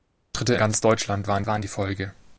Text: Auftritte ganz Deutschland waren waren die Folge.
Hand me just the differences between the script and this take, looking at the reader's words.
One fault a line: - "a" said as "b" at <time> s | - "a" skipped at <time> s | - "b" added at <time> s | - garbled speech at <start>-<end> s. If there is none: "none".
none